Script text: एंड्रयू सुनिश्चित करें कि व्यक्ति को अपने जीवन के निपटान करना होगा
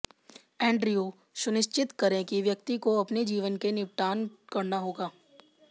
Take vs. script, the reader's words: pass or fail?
pass